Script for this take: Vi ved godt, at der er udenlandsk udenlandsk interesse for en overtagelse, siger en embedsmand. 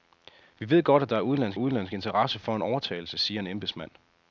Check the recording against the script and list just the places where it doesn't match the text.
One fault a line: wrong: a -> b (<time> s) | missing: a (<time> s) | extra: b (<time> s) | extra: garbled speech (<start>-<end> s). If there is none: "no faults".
no faults